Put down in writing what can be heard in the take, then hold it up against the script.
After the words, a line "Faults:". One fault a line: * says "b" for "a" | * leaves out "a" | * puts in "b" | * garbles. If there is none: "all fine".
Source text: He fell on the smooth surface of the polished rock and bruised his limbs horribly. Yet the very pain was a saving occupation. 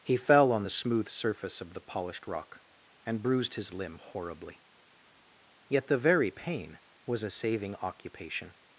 He fell on the smooth surface of the polished rock and bruised his limb horribly. Yet the very pain was a saving occupation.
Faults:
* says "limb" for "limbs"